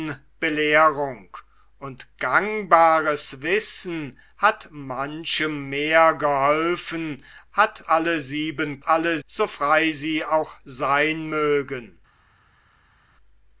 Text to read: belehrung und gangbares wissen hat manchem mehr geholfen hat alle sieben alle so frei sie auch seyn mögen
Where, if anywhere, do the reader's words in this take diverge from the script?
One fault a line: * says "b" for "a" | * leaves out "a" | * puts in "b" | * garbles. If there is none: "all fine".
all fine